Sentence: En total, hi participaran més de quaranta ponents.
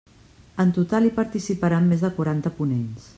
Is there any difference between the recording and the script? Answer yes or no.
no